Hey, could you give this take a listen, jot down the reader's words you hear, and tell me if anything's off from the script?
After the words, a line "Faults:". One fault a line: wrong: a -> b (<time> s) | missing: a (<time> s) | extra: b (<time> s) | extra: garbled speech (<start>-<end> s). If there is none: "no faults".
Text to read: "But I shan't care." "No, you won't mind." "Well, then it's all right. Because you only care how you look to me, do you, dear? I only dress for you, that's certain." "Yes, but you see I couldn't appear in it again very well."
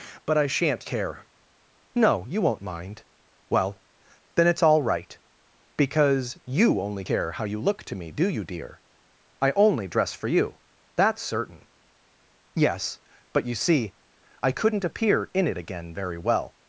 "But I shan't care." "No, you won't mind." "Well, then it's all right. Because you only care how you look to me, do you, dear? I only dress for you, that's certain." "Yes, but you see I couldn't appear in it again very well."
Faults:
no faults